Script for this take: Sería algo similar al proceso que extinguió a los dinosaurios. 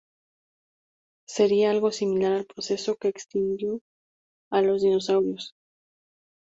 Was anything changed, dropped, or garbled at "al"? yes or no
no